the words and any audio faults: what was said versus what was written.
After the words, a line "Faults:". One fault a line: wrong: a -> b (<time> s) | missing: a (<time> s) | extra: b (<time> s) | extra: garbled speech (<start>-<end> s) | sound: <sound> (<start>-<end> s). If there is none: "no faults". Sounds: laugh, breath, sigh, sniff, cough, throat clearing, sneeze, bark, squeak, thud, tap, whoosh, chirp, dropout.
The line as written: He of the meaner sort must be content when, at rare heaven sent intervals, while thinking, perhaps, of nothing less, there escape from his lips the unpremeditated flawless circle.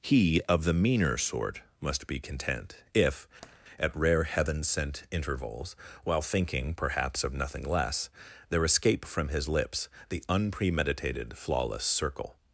He of the meaner sort must be content if, at rare heaven sent intervals, while thinking, perhaps, of nothing less, there escape from his lips the unpremeditated flawless circle.
Faults:
wrong: when -> if (2.9 s)
sound: tap (3.4-3.6 s)